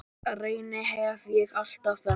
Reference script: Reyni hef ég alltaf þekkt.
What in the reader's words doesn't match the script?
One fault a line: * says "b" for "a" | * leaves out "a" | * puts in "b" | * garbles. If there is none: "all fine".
all fine